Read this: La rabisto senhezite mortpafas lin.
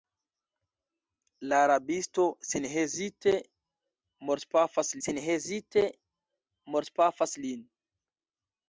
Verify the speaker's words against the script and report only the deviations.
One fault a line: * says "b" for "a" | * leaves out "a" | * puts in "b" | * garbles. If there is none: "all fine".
* puts in "senhezite mortpafas"